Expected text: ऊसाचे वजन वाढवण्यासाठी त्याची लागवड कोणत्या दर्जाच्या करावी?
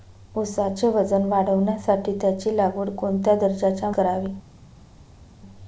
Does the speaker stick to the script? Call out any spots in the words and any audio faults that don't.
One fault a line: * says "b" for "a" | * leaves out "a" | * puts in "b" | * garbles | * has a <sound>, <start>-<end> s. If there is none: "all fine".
all fine